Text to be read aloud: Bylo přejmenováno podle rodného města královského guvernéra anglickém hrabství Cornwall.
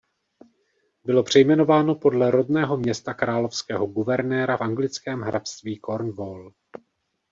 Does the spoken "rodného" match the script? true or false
true